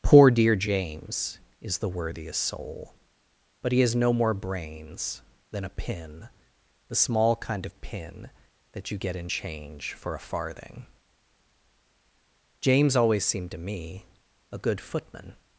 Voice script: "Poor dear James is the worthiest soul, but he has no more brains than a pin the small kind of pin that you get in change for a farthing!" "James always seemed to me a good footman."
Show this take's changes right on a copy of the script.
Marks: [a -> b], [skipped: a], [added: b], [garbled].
"Poor dear James is the worthiest soul, but he has no more brains than a pin the small kind of pin that you get in change for a farthing!" "James always seemed to me a good footman."